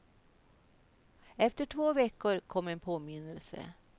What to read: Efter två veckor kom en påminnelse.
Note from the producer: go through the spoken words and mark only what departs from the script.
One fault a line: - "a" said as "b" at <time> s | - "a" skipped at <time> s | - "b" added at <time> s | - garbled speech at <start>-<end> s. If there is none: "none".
none